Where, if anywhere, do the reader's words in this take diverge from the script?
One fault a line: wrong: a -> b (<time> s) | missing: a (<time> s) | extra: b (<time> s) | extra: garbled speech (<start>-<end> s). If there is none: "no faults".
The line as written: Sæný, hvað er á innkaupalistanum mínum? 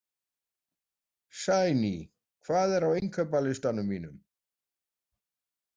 no faults